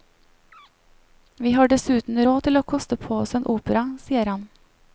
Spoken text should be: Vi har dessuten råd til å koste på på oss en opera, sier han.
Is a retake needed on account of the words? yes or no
yes